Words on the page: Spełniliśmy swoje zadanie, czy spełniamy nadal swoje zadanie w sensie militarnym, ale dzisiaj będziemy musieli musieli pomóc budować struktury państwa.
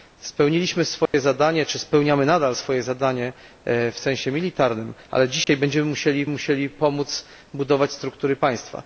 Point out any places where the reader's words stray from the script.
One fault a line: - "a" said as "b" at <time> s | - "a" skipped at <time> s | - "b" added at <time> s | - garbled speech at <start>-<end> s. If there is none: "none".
none